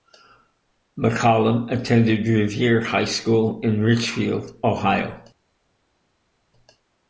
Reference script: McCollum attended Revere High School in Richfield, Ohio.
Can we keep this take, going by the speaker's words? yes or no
yes